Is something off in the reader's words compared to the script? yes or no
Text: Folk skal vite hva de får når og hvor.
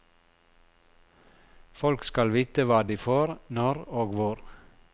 no